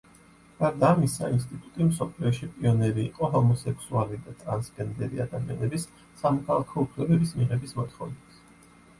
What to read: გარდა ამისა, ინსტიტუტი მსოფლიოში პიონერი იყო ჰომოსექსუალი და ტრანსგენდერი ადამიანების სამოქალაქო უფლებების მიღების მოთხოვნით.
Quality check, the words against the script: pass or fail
pass